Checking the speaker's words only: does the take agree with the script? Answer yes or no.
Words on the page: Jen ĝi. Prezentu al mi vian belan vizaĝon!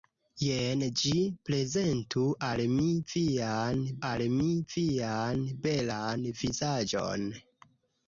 no